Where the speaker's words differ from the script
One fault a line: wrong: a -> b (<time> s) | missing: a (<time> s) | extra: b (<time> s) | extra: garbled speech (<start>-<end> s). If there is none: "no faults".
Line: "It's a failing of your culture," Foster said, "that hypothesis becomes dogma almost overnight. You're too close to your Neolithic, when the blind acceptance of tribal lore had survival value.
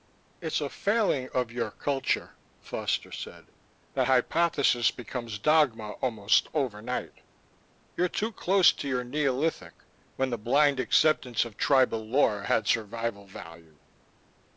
no faults